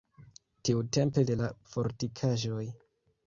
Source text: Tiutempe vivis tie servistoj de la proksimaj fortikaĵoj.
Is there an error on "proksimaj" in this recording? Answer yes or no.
yes